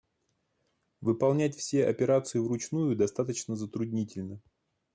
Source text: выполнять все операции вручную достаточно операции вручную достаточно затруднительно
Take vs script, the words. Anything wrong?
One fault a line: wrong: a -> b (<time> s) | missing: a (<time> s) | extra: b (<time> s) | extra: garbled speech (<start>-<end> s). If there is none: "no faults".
missing: операции вручную достаточно (3.5 s)